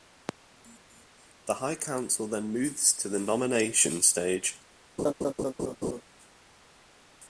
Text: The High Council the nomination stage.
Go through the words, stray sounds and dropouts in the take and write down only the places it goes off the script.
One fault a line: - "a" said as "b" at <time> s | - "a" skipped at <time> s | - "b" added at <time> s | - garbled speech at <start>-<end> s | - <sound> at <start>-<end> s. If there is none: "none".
- "then moves to" added at 2.3 s
- laugh at 5.0-6.0 s